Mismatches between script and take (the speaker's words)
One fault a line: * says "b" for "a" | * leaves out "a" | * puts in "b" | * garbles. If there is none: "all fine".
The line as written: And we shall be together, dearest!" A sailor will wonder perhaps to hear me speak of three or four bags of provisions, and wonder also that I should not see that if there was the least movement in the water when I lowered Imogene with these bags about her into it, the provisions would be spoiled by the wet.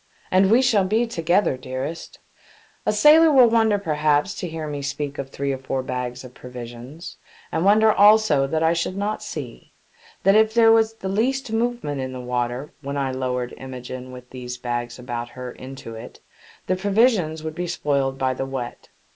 all fine